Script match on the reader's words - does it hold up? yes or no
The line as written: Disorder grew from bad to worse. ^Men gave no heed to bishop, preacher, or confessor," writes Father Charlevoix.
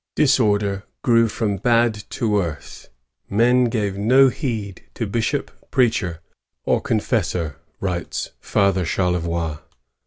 yes